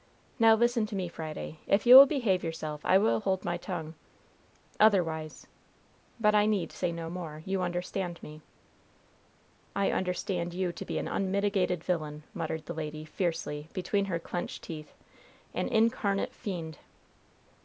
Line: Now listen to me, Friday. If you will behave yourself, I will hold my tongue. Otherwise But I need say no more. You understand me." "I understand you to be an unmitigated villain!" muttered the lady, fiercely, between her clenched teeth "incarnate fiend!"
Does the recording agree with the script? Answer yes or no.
no